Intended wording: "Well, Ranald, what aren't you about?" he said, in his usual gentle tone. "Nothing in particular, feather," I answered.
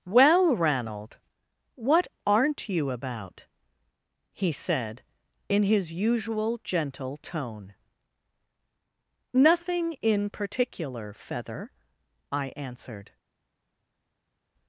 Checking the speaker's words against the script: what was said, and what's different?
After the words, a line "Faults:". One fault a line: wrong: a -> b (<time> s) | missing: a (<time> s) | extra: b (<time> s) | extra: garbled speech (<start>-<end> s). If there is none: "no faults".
"Well, Ranald, what aren't you about?" he said, in his usual gentle tone. "Nothing in particular, feather," I answered.
Faults:
no faults